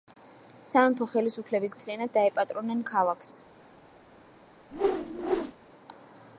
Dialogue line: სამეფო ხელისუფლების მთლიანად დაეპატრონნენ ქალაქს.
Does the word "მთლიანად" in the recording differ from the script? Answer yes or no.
no